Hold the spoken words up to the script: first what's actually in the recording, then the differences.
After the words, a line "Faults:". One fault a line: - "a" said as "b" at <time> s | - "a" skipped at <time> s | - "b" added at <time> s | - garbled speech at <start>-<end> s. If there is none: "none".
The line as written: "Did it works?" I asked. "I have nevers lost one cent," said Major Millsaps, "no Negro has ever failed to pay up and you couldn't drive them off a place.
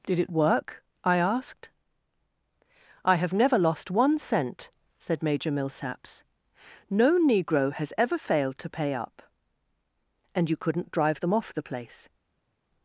"Did it work?" I asked. "I have never lost one cent," said Major Millsaps, "no Negro has ever failed to pay up and you couldn't drive them off the place.
Faults:
- "works" said as "work" at 0.3 s
- "nevers" said as "never" at 3.3 s
- "a" said as "the" at 11.5 s